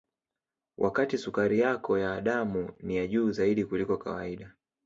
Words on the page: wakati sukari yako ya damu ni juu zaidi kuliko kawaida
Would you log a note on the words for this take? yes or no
yes